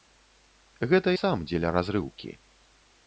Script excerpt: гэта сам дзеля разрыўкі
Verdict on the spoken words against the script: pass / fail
pass